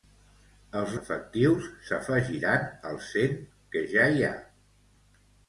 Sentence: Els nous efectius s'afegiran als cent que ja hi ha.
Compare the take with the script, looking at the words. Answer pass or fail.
fail